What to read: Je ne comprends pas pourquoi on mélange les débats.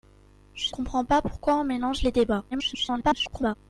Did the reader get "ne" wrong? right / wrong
wrong